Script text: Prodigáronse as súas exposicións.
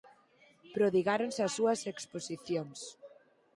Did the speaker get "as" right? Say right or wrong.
right